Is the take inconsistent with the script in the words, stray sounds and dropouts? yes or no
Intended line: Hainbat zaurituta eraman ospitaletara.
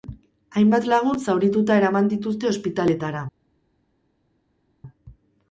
yes